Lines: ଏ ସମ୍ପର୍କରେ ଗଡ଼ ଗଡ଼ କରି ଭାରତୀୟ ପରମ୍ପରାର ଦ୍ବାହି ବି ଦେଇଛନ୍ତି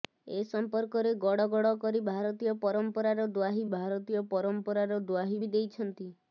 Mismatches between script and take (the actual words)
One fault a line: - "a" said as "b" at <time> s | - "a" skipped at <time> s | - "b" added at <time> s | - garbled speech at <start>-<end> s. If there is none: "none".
- "ଭାରତୀୟ ପରମ୍ପରାର ଦ୍ବାହି" added at 3.7 s